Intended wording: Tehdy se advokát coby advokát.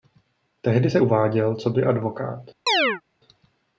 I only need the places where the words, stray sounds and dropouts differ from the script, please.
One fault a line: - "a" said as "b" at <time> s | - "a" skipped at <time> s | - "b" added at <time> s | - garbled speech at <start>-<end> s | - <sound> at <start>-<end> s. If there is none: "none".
- "advokát" said as "uváděl" at 1.0 s
- chirp at 2.7-3.0 s